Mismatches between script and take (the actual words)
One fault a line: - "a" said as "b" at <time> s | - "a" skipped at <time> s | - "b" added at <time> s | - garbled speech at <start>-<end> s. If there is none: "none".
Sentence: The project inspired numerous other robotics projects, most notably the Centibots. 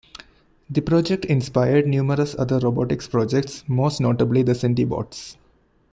none